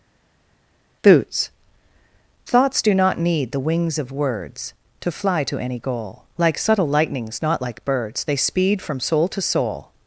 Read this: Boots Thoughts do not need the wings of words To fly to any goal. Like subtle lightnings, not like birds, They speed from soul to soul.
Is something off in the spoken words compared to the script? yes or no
no